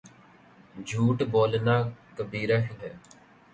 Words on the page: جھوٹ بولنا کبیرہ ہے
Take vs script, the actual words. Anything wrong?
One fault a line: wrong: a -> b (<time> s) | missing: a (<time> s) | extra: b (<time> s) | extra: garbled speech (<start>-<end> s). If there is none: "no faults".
no faults